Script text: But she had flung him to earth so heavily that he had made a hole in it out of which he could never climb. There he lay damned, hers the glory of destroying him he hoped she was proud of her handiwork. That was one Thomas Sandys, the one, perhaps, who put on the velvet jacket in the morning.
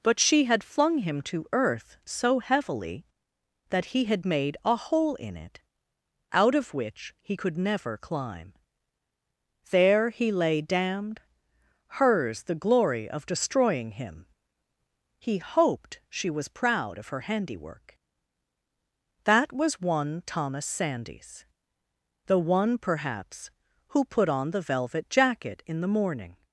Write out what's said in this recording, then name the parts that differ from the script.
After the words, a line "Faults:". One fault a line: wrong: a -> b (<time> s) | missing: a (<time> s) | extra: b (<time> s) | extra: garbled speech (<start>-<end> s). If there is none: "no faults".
But she had flung him to earth so heavily that he had made a hole in it out of which he could never climb. There he lay damned, hers the glory of destroying him he hoped she was proud of her handiwork. That was one Thomas Sandys, the one, perhaps, who put on the velvet jacket in the morning.
Faults:
no faults